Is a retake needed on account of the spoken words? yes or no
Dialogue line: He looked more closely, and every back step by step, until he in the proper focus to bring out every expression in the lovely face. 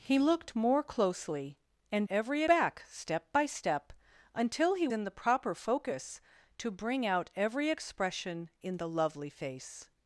no